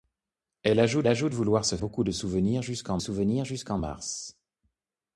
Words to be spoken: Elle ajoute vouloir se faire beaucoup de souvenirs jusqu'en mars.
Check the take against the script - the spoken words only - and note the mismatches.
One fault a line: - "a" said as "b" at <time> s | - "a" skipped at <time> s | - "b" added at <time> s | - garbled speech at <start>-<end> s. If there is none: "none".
- "ajoute" added at 1.1 s
- "faire" skipped at 1.8 s
- "souvenirs jusqu'en" added at 3.0 s